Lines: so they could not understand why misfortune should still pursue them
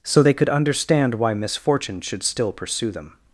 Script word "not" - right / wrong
wrong